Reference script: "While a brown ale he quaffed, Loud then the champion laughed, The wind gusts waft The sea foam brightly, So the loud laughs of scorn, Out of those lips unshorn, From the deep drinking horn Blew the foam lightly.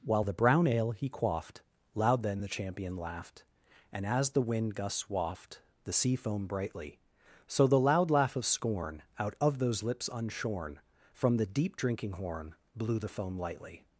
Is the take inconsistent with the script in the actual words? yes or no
yes